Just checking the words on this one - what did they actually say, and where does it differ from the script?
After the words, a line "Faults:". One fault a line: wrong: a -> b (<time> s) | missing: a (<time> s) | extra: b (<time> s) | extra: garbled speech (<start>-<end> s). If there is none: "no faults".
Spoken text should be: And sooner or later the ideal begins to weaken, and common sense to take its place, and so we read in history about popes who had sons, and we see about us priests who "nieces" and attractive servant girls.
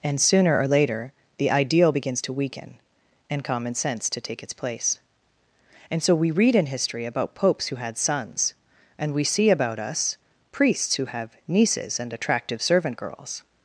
And sooner or later the ideal begins to weaken, and common sense to take its place, and so we read in history about popes who had sons, and we see about us priests who have "nieces" and attractive servant girls.
Faults:
extra: have (11.1 s)